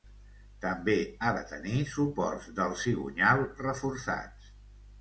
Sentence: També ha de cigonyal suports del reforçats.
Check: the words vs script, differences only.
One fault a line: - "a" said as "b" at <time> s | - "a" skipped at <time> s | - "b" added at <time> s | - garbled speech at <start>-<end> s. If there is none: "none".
- "cigonyal" said as "tenir" at 1.5 s
- "cigonyal" added at 2.8 s